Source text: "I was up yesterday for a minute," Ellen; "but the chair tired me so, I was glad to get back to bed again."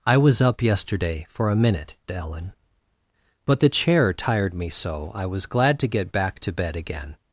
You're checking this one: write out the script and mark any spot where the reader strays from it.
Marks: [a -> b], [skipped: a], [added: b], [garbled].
"I was up yesterday for a minute," Ellen; "but the chair tired me so, I was glad to get back to bed again."